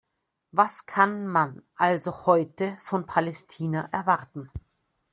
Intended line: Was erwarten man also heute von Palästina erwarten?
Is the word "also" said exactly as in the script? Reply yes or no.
yes